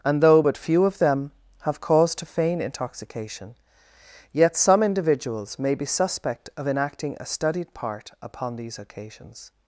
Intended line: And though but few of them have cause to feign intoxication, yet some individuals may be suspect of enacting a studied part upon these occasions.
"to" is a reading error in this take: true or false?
false